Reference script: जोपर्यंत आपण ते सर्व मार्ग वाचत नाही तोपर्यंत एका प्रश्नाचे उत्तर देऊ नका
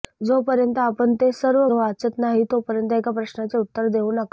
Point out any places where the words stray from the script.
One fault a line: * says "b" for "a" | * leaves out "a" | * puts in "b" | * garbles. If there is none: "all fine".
* leaves out "मार्ग"